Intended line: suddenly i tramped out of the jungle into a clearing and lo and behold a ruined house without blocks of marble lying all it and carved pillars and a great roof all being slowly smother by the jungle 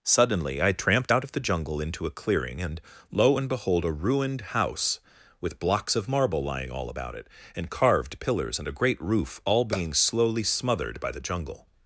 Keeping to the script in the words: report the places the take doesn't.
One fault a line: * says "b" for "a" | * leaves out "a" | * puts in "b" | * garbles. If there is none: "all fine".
* says "with" for "without"
* puts in "about"
* says "smothered" for "smother"